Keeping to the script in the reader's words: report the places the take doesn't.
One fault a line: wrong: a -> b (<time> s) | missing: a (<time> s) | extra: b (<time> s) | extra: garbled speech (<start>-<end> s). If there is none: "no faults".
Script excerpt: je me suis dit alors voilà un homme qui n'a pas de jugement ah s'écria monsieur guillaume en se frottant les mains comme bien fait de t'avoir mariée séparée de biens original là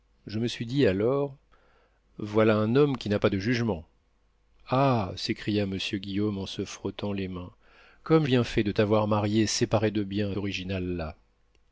no faults